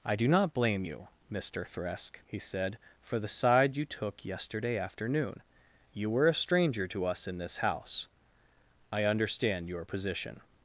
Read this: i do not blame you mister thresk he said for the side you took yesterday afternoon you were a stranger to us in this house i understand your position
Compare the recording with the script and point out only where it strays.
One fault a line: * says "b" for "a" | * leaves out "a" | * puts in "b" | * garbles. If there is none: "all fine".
all fine